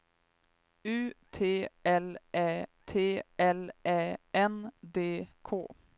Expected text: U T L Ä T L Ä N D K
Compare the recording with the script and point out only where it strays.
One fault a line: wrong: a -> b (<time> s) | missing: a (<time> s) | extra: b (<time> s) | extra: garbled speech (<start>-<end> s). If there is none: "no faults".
no faults